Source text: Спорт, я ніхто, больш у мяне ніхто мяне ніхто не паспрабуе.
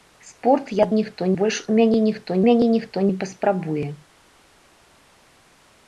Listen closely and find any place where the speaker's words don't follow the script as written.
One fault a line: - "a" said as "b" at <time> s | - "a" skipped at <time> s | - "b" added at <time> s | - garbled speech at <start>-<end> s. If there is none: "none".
none